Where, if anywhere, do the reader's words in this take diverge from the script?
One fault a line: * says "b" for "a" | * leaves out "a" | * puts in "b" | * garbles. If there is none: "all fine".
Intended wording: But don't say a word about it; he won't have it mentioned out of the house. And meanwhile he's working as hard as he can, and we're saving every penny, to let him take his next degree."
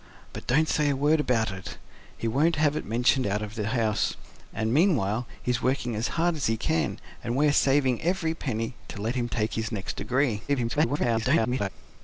* garbles